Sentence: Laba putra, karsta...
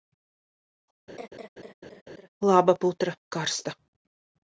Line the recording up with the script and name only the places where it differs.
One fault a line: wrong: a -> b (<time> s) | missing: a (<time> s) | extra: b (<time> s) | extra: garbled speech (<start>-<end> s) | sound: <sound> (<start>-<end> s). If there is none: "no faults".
sound: laugh (1.1-2.3 s)